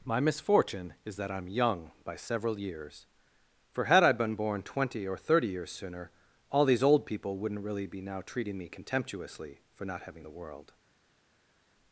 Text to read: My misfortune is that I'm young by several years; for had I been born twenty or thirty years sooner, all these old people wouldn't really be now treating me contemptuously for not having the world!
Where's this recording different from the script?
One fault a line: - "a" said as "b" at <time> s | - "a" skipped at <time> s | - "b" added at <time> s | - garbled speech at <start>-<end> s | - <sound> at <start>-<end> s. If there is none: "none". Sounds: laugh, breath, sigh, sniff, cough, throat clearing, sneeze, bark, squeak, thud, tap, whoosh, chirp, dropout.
none